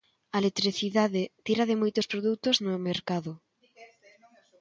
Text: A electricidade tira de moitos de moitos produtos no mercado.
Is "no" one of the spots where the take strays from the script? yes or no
no